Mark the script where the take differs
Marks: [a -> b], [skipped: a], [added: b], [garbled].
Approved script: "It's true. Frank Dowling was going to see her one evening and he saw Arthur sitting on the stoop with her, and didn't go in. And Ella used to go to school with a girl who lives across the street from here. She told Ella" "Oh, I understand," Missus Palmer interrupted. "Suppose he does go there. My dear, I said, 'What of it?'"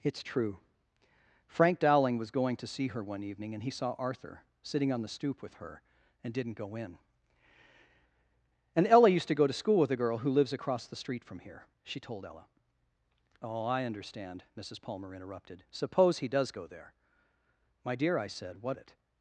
"It's true. Frank Dowling was going to see her one evening and he saw Arthur sitting on the stoop with her, and didn't go in. And Ella used to go to school with a girl who lives across the street from here. She told Ella" "Oh, I understand," Missus Palmer interrupted. "Suppose he does go there. My dear, I said, 'What [skipped: of] it?'"